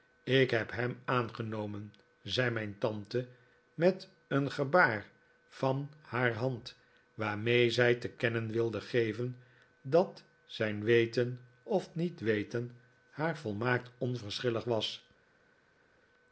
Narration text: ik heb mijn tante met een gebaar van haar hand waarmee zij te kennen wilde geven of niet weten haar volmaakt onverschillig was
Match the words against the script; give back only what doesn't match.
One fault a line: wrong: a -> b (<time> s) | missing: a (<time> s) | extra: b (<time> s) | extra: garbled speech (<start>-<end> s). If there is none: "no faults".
extra: hem aangenomen zei (0.7 s)
extra: dat zijn weten (9.8 s)